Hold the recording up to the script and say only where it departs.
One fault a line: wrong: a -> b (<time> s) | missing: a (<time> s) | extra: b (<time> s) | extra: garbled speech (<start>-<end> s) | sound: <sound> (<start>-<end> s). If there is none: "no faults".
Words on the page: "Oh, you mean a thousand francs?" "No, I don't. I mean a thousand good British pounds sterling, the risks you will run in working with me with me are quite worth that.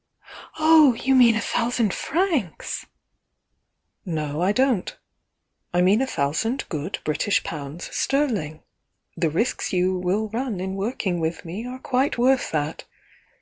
missing: with me (11.7 s)